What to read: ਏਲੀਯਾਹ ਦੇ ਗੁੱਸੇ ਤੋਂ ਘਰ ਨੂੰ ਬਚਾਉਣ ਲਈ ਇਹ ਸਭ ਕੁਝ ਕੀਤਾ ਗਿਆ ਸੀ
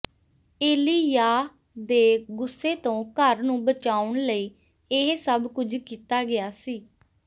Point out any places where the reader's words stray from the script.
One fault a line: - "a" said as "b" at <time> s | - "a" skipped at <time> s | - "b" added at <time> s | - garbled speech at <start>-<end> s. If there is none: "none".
none